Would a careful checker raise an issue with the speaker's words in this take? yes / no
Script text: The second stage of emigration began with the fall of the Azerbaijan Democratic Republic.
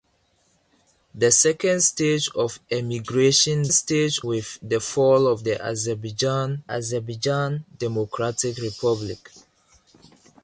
yes